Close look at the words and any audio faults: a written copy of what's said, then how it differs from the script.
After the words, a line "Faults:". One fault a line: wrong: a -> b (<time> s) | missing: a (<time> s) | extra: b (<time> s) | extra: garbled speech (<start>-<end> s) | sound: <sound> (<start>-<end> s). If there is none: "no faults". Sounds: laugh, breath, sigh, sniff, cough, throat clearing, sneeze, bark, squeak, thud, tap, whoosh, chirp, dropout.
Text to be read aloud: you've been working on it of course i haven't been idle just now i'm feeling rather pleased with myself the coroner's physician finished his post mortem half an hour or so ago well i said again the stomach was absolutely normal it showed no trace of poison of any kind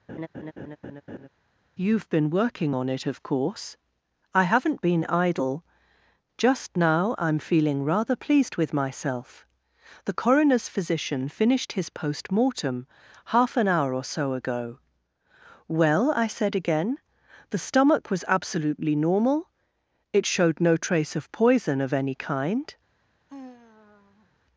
you've been working on it of course i haven't been idle just now i'm feeling rather pleased with myself the coroner's physician finished his post mortem half an hour or so ago well i said again the stomach was absolutely normal it showed no trace of poison of any kind
Faults:
sound: laugh (0.1-1.3 s)
sound: sigh (23.3-24.3 s)